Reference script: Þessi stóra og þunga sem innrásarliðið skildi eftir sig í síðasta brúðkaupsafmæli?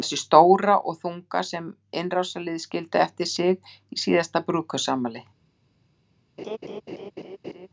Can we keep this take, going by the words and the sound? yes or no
no